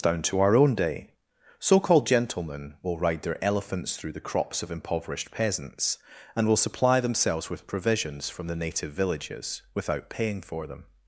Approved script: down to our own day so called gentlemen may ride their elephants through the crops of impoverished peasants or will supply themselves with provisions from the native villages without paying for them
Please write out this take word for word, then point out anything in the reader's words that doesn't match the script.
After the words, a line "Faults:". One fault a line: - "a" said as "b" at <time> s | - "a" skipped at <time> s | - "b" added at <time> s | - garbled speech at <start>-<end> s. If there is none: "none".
down to our own day so called gentlemen will ride their elephants through the crops of impoverished peasants and will supply themselves with provisions from the native villages without paying for them
Faults:
- "may" said as "will" at 2.8 s
- "or" said as "and" at 6.4 s